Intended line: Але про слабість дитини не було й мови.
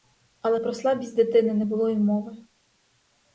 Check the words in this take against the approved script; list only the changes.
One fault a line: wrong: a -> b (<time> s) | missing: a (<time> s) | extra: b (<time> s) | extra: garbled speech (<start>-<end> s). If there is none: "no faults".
no faults